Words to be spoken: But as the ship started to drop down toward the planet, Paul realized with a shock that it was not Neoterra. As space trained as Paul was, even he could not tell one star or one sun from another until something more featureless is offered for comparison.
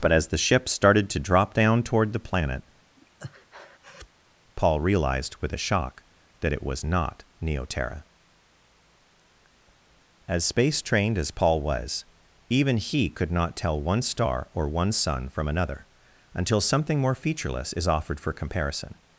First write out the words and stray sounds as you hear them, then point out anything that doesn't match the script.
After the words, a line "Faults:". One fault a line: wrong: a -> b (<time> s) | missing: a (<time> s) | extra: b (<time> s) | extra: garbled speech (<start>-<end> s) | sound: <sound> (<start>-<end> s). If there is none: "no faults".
But as the ship started to drop down toward the planet, Paul realized with a shock that it was not Neoterra. As space trained as Paul was, even he could not tell one star or one sun from another until something more featureless is offered for comparison.
Faults:
sound: breath (3.0-4.1 s)